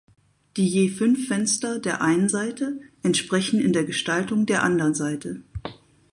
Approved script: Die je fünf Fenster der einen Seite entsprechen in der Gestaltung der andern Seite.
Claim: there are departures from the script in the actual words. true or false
false